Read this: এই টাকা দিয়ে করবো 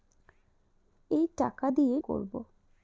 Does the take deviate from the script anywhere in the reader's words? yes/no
no